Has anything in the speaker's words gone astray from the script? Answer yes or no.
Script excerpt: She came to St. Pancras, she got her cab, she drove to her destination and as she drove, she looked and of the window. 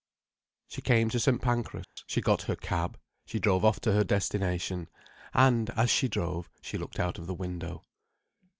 yes